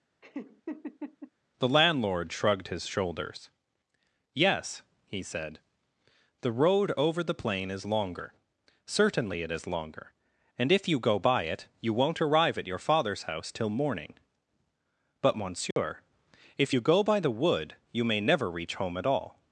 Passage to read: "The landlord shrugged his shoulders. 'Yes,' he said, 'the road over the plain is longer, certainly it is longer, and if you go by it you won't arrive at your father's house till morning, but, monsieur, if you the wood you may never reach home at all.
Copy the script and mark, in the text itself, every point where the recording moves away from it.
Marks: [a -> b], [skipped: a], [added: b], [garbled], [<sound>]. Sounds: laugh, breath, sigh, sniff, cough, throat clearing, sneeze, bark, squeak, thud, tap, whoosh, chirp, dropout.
[laugh] "The landlord shrugged his shoulders. 'Yes,' he said, 'the road over the plain is longer, certainly it is longer, and if you go by it you won't arrive at your father's house till morning, but, monsieur, [dropout] if you [added: go by] the wood you may never reach home at all.